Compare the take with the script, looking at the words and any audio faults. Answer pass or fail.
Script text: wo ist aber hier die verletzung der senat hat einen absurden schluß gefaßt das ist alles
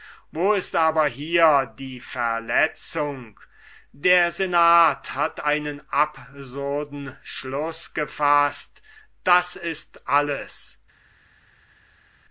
pass